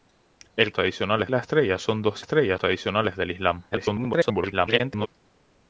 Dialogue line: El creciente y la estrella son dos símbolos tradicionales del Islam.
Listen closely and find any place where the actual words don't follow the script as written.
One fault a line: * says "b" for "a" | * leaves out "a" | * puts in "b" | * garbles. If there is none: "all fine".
* says "tradicionales" for "creciente"
* says "estrella" for "símbolos"
* garbles